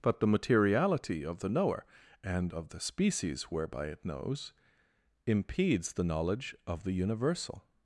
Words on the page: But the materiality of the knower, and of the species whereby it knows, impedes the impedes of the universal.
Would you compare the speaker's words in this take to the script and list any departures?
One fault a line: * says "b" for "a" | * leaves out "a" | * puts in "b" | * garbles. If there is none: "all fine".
* says "knowledge" for "impedes"